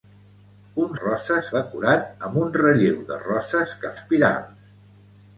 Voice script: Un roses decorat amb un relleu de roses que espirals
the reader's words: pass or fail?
pass